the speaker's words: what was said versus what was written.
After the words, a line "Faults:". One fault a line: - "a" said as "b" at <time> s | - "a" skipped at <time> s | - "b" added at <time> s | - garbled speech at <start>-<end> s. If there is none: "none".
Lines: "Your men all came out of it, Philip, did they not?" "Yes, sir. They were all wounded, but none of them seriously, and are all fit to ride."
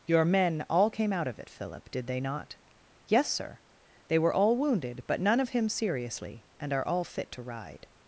"Your men all came out of it, Philip, did they not?" "Yes, sir. They were all wounded, but none of him seriously, and are all fit to ride."
Faults:
- "them" said as "him" at 5.5 s